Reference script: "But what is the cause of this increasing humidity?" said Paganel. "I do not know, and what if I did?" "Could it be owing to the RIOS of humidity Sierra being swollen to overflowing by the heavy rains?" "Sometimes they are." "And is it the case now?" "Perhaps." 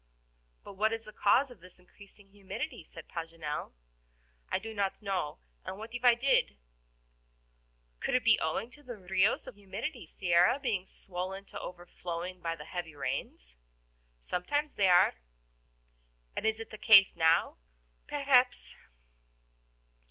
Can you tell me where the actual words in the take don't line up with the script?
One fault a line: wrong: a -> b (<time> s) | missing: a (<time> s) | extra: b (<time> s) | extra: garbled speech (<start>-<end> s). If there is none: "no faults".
no faults